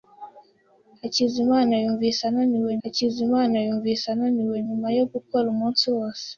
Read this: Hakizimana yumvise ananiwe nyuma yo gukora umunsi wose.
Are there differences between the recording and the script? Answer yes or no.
yes